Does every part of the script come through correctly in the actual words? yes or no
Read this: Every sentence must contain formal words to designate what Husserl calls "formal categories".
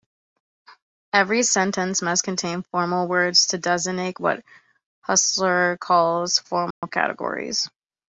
yes